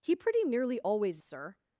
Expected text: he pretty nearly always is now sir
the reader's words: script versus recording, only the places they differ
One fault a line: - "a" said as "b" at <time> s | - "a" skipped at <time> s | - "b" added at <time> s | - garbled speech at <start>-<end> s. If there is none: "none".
- "is now" skipped at 1.2 s